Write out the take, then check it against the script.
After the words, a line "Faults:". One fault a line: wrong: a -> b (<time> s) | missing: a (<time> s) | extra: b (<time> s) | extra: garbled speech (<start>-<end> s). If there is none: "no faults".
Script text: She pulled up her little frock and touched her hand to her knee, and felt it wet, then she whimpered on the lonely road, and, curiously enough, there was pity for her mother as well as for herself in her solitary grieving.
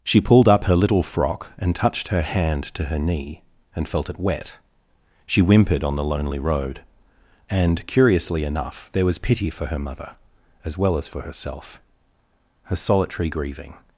She pulled up her little frock and touched her hand to her knee, and felt it wet, she whimpered on the lonely road, and, curiously enough, there was pity for her mother as well as for herself her solitary grieving.
Faults:
missing: then (4.6 s)
missing: in (11.8 s)